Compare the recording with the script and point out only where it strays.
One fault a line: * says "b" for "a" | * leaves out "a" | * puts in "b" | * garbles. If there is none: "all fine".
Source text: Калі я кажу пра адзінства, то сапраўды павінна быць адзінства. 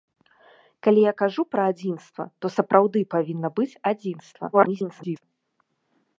* garbles